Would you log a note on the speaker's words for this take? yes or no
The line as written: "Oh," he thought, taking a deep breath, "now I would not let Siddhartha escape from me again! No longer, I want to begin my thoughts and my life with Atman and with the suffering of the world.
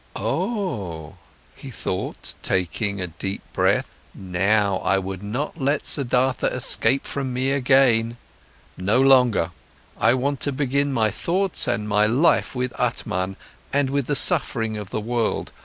no